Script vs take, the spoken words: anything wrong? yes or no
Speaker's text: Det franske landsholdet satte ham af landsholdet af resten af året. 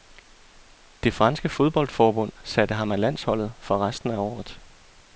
yes